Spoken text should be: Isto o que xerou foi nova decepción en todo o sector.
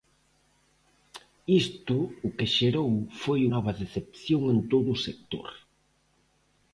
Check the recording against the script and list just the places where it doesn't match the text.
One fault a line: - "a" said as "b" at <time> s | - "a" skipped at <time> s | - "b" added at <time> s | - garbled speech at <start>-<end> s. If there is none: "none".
none